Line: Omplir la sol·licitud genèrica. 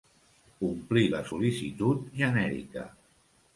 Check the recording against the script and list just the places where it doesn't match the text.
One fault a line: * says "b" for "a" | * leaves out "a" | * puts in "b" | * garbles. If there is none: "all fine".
all fine